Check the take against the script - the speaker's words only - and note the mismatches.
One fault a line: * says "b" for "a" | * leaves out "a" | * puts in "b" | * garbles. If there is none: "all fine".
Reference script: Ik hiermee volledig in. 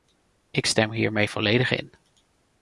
* puts in "stem"